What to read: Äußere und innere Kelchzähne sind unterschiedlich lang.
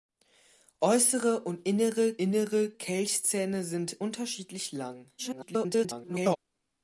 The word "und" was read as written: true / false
true